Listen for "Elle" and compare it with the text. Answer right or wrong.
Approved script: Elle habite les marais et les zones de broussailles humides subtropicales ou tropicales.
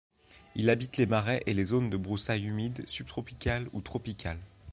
wrong